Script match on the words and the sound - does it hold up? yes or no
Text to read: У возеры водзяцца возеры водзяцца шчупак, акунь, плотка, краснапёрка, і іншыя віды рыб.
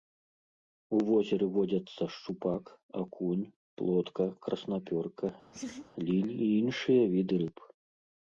no